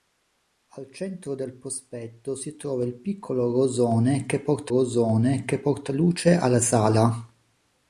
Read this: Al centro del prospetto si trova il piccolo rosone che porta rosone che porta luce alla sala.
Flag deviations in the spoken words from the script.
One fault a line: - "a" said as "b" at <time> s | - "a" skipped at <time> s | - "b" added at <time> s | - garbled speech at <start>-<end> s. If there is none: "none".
none